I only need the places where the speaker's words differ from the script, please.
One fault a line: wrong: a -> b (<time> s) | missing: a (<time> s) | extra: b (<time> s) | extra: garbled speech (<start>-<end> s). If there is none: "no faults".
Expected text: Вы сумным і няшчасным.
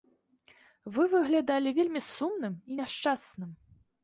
extra: выглядалі вельмі (1.1 s)